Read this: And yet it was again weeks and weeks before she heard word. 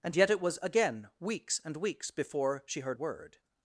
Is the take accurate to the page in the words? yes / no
yes